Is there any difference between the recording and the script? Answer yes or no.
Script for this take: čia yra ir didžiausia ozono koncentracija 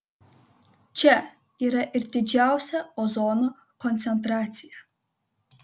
no